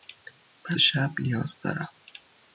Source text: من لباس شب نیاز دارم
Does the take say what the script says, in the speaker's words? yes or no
no